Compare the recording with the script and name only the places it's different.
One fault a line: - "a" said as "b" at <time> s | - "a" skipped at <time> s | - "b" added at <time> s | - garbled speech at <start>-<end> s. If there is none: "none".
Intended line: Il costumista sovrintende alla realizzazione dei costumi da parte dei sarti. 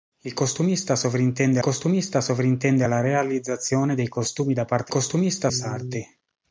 - "costumista sovrintende" added at 1.6 s
- "dei" said as "costumista" at 4.9 s